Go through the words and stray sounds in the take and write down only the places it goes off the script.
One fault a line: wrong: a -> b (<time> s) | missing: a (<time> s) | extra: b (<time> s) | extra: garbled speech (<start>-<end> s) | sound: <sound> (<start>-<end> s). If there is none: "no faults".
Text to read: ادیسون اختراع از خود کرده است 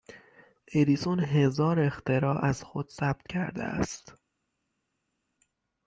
extra: هزار (1.2 s)
extra: ثبت (2.9 s)